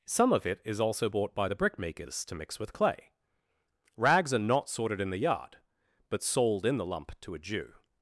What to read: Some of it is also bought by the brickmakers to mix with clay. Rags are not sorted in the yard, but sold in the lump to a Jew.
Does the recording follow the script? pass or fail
pass